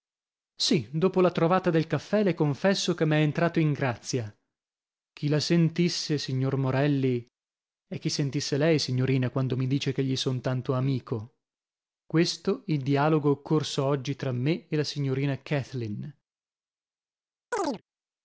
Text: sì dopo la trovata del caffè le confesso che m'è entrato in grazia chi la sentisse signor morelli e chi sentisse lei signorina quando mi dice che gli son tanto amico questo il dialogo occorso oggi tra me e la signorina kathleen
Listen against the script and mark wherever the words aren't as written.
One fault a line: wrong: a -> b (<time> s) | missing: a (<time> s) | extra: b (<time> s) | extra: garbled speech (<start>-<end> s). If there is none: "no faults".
no faults